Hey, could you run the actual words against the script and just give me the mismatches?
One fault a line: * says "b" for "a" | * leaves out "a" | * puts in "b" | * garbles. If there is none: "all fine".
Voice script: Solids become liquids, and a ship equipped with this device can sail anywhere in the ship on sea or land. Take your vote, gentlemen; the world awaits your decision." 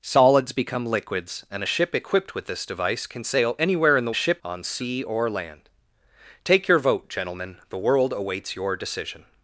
all fine